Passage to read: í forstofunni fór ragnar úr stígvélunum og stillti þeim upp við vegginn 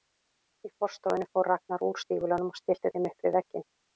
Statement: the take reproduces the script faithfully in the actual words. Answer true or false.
true